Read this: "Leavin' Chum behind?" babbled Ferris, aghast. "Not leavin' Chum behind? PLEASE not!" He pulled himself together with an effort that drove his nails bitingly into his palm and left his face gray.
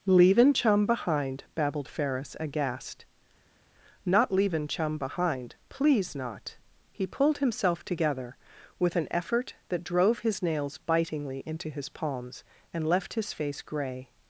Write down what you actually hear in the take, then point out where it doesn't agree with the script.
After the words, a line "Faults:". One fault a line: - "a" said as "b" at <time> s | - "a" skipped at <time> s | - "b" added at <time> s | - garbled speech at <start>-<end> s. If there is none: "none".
"Leavin' Chum behind?" babbled Ferris, aghast. "Not leavin' Chum behind? PLEASE not!" He pulled himself together with an effort that drove his nails bitingly into his palms and left his face gray.
Faults:
- "palm" said as "palms" at 11.9 s